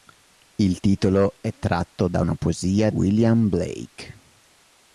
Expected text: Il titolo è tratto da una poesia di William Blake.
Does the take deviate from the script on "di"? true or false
true